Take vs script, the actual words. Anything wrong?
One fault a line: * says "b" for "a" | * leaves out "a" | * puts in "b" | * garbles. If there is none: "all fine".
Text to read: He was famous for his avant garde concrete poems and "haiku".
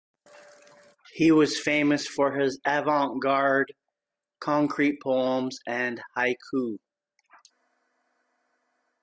all fine